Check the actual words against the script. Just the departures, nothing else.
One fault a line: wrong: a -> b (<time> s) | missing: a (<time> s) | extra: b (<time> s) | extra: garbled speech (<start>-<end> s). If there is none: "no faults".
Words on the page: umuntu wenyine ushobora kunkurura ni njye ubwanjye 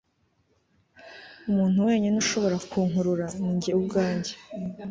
no faults